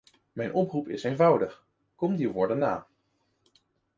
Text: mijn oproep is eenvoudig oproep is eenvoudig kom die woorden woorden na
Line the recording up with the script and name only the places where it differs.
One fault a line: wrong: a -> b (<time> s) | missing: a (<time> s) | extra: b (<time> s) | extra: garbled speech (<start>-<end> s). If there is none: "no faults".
missing: oproep is eenvoudig (1.6 s)
missing: woorden (2.6 s)